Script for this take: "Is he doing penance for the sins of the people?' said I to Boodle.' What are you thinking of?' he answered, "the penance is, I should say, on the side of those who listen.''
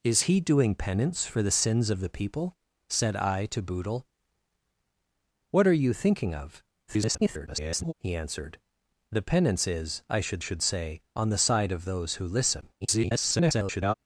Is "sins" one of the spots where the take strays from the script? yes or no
no